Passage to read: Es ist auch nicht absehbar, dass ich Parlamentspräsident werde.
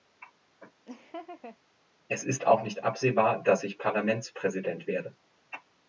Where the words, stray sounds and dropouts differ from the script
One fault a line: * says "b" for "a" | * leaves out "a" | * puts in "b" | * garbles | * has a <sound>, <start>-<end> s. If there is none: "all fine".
* has a laugh, 0.9-1.6 s